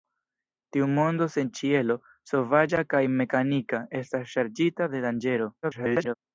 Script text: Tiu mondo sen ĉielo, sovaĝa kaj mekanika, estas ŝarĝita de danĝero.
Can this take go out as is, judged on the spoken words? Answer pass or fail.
fail